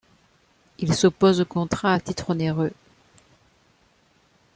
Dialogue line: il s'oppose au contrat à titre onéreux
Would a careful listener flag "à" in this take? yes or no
no